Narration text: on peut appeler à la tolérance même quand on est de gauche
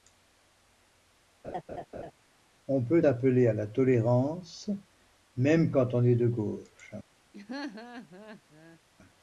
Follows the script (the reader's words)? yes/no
yes